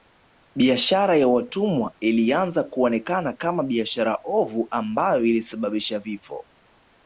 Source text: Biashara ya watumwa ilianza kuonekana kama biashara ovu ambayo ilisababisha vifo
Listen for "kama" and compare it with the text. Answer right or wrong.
right